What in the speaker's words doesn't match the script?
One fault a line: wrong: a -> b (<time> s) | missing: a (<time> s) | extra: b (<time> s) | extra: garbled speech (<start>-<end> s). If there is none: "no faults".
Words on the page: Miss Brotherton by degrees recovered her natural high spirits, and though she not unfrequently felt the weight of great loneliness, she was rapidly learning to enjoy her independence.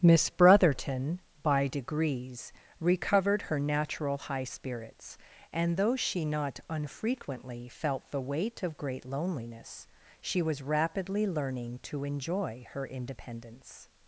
no faults